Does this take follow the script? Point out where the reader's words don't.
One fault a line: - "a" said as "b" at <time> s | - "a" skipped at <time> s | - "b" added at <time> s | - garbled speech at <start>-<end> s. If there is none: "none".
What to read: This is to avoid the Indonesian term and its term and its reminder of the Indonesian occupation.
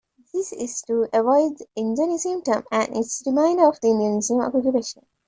- "term and its" skipped at 3.2 s